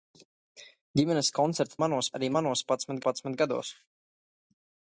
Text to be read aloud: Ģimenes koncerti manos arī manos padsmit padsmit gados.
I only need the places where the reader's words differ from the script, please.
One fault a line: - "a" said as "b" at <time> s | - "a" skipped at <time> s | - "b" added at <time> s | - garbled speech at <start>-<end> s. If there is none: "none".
none